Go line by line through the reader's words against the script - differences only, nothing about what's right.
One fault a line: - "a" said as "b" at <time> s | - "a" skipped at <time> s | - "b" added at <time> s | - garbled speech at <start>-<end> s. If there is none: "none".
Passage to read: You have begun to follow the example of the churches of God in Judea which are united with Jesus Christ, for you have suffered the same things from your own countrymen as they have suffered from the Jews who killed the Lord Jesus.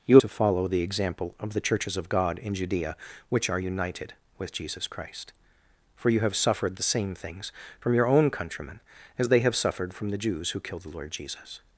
- "have begun" skipped at 0.2 s